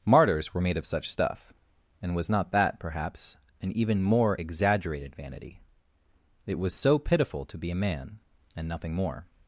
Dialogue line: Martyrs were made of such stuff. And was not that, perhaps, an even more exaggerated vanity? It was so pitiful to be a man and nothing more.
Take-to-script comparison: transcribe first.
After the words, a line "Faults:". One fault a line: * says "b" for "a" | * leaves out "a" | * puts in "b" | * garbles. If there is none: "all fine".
Martyrs were made of such stuff. And was not that, perhaps, an even more exaggerated vanity? It was so pitiful to be a man and nothing more.
Faults:
all fine